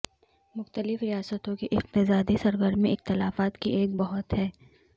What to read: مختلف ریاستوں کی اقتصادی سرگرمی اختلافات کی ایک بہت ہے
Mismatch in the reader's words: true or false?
false